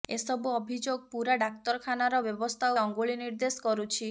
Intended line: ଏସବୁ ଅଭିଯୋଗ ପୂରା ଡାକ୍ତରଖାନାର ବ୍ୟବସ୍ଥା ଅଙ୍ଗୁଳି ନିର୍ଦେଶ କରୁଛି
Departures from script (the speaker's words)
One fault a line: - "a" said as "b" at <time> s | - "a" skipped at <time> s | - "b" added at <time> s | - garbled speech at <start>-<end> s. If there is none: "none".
none